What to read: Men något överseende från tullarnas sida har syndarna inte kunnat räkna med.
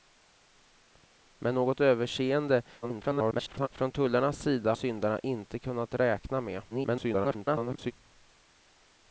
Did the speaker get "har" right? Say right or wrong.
wrong